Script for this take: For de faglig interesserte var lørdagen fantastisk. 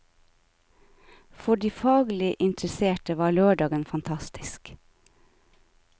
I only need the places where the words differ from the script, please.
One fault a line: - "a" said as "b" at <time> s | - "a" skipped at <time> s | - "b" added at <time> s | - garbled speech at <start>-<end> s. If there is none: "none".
none